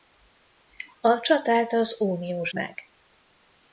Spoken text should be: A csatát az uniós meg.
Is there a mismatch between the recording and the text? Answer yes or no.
no